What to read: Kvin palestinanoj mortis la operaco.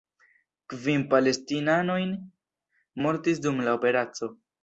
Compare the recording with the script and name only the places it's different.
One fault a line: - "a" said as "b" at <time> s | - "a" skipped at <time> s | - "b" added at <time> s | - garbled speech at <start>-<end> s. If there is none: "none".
- "dum" added at 3.5 s